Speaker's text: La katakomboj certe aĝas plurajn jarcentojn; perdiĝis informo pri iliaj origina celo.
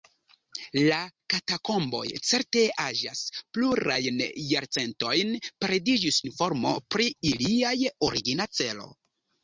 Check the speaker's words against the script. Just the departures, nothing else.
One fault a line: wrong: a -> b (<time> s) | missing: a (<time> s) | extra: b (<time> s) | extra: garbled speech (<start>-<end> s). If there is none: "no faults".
no faults